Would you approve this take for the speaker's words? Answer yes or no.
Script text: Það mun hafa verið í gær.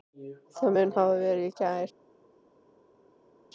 yes